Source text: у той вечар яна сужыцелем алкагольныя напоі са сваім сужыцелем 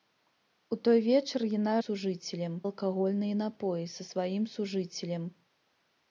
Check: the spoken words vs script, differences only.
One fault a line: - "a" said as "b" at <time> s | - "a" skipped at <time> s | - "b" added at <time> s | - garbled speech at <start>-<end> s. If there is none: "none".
none